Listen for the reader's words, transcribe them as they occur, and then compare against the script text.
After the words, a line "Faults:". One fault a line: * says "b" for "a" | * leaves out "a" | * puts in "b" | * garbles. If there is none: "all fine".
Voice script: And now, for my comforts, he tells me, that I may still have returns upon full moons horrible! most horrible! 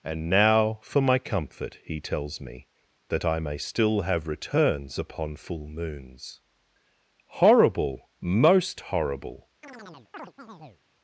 And now, for my comfort, he tells me, that I may still have returns upon full moons horrible! most horrible!
Faults:
* says "comfort" for "comforts"